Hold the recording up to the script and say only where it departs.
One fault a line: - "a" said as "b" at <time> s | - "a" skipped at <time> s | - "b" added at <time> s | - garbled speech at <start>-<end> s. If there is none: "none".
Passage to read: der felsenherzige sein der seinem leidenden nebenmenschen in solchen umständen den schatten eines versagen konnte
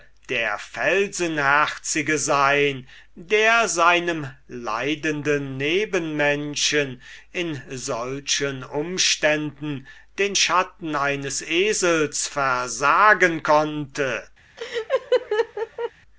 - "esels" added at 11.4 s